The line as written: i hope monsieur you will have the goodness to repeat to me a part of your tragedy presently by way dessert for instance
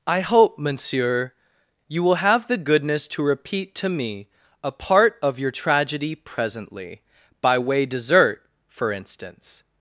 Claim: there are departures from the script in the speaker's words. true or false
false